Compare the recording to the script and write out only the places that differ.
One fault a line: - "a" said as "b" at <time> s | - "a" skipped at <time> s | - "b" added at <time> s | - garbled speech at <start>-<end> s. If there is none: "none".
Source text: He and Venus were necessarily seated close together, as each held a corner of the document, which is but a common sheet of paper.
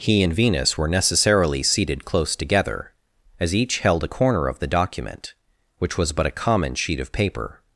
- "is" said as "was" at 6.0 s